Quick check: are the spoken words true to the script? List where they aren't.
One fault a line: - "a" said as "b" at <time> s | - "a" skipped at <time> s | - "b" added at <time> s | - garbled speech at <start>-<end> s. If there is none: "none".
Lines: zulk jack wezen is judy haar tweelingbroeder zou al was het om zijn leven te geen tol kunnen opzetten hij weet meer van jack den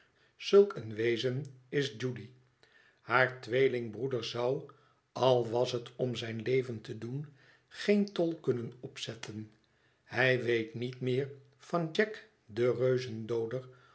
- "jack" said as "een" at 0.8 s
- "doen" added at 7.0 s
- "niet" added at 10.7 s